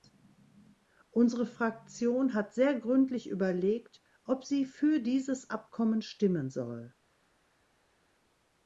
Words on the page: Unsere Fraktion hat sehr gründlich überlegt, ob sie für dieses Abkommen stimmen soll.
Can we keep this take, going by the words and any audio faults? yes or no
yes